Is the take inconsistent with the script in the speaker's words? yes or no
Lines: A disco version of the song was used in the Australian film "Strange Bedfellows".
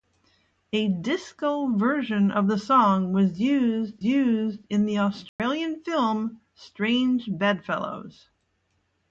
yes